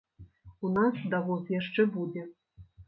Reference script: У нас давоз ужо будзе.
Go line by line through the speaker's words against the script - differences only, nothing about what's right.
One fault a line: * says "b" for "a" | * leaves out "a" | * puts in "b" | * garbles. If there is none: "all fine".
* says "яшчэ" for "ужо"